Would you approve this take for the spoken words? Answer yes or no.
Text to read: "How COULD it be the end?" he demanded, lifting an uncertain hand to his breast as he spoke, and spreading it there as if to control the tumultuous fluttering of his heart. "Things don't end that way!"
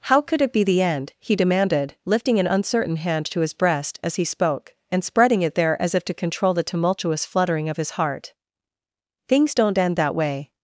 yes